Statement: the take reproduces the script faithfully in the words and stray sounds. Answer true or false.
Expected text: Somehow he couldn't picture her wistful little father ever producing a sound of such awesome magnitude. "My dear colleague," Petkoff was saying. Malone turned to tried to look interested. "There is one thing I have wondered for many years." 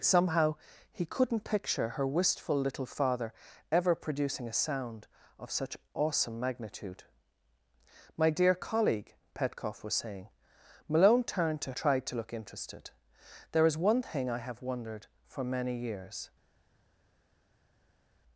true